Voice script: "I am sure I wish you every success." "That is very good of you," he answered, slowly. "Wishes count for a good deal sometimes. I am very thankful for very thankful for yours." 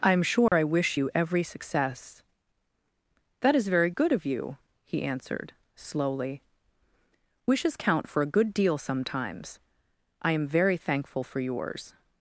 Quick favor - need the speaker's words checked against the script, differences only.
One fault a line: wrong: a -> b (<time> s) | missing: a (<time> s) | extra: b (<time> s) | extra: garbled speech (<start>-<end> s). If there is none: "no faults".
missing: very thankful for (11.4 s)